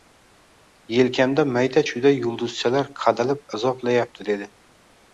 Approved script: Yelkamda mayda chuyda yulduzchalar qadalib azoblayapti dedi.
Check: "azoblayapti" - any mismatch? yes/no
no